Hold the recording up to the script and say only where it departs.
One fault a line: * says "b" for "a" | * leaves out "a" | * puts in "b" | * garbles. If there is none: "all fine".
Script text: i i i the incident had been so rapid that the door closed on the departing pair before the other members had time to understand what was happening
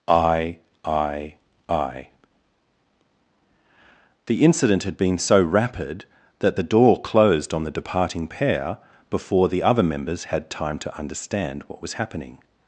all fine